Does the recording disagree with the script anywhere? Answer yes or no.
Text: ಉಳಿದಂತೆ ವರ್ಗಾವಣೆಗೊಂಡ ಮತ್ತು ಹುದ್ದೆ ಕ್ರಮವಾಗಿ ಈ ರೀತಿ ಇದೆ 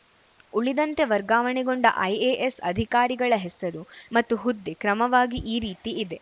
yes